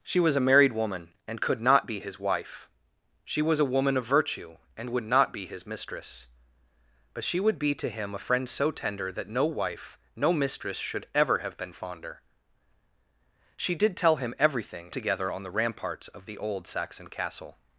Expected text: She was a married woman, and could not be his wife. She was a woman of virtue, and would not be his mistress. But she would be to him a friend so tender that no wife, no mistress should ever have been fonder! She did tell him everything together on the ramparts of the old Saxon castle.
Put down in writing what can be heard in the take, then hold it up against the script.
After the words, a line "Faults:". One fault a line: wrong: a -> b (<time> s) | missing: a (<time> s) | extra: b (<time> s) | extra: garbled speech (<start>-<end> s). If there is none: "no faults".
She was a married woman, and could not be his wife. She was a woman of virtue, and would not be his mistress. But she would be to him a friend so tender that no wife, no mistress should ever have been fonder! She did tell him everything together on the ramparts of the old Saxon castle.
Faults:
no faults